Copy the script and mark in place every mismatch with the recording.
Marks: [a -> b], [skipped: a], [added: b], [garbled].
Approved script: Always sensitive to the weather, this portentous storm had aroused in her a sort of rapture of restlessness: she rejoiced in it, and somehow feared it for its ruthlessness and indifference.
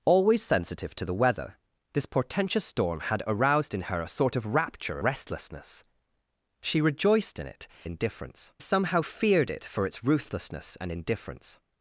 Always sensitive to the weather, this portentous storm had aroused in her a sort of rapture [skipped: of] restlessness: she rejoiced in it, [and -> indifference] somehow feared it for its ruthlessness and indifference.